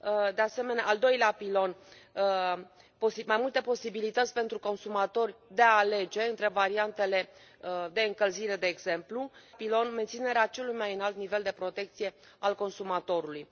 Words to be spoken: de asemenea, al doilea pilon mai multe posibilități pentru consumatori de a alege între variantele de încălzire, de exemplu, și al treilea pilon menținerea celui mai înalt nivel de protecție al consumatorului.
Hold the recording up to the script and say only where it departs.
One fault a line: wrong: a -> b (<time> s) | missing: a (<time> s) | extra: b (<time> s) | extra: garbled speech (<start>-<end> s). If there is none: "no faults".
missing: și al treilea (9.3 s)